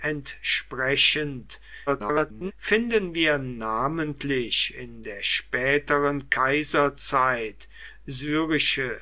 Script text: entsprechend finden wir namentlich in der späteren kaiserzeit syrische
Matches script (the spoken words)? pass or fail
fail